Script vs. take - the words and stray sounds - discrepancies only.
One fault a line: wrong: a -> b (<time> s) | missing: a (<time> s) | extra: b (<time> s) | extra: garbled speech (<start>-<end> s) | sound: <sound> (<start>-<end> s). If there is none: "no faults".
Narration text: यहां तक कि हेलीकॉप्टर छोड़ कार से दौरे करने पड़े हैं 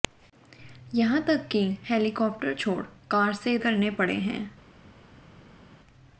missing: दौरे (3.6 s)